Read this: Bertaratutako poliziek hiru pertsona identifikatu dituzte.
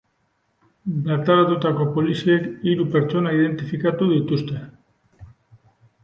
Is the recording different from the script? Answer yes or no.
no